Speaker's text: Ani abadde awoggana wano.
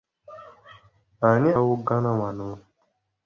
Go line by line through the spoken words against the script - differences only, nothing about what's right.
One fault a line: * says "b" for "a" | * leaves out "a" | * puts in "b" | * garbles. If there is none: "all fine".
* leaves out "abadde"